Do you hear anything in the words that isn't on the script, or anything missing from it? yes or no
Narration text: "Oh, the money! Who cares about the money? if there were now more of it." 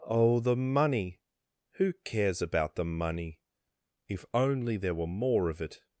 yes